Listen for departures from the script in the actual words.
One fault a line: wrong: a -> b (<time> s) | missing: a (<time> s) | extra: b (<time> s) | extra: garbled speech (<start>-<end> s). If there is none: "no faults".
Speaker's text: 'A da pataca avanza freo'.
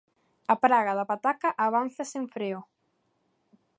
extra: praga (0.6 s)
extra: sen (2.1 s)